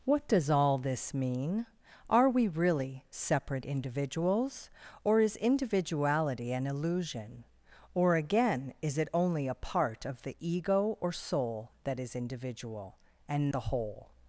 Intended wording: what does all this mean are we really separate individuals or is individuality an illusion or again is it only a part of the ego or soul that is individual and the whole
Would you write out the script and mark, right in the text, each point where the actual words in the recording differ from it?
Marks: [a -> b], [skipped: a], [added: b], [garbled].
what does all this mean are we really separate individuals or is individuality an illusion or again is it only a part of the ego or soul that is individual and the whole